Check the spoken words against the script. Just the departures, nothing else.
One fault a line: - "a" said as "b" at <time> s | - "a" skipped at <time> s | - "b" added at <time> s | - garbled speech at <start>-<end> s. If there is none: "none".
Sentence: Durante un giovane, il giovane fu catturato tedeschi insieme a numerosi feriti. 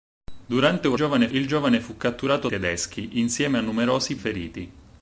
none